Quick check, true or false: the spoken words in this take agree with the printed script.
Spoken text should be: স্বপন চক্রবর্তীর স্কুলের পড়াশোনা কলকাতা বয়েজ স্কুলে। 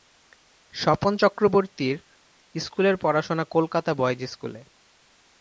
true